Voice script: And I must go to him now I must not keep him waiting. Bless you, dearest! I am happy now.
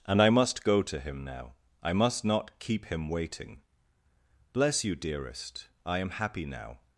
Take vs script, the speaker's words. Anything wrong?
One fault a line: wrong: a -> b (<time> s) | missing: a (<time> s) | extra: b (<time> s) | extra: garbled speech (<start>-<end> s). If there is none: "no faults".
no faults